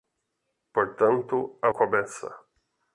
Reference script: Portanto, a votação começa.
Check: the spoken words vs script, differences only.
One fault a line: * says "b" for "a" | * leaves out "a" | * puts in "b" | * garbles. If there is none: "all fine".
* leaves out "votação"